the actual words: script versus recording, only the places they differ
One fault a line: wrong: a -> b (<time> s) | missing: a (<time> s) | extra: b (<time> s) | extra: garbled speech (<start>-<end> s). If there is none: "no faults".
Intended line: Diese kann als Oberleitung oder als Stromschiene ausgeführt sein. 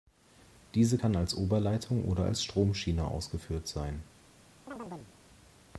no faults